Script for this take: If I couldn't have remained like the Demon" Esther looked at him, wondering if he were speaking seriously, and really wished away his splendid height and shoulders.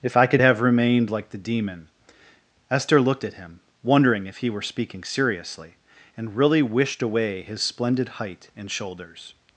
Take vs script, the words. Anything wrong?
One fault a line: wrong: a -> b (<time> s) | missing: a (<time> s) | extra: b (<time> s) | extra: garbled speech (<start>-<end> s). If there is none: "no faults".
wrong: couldn't -> could (0.2 s)